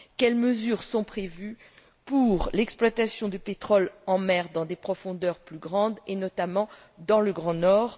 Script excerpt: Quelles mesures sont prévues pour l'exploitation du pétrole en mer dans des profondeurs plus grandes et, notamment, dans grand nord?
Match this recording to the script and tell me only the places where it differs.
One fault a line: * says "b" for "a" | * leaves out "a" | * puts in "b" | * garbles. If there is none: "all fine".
* puts in "le"